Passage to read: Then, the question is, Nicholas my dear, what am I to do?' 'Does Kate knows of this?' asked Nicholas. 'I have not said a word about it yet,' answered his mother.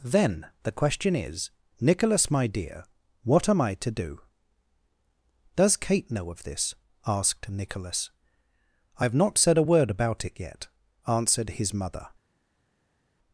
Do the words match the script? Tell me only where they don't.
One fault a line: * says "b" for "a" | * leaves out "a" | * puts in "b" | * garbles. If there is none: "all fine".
* says "know" for "knows"